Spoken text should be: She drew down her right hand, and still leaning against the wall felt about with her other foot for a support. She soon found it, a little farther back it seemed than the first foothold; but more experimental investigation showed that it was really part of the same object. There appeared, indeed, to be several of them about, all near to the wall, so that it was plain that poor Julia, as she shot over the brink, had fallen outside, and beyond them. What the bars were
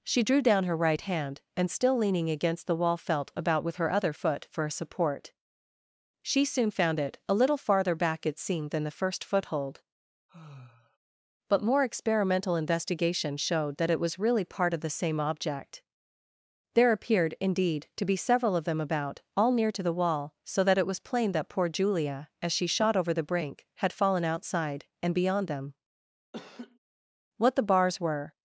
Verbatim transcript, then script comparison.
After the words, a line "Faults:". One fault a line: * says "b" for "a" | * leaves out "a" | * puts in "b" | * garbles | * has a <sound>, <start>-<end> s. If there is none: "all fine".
She drew down her right hand, and still leaning against the wall felt about with her other foot for a support. She soon found it, a little farther back it seemed than the first foothold; but more experimental investigation showed that it was really part of the same object. There appeared, indeed, to be several of them about, all near to the wall, so that it was plain that poor Julia, as she shot over the brink, had fallen outside, and beyond them. What the bars were
Faults:
* has a sigh, 10.3-11.0 s
* has a laugh, 26.3-26.8 s